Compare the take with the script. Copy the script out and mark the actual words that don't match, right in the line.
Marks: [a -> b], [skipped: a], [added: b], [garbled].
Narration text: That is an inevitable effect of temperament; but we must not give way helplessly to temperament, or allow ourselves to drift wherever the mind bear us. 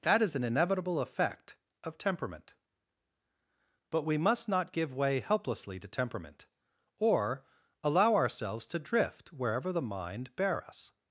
That is an inevitable effect of temperament; but we must not give way helplessly to temperament, or allow ourselves to drift wherever the mind bear us.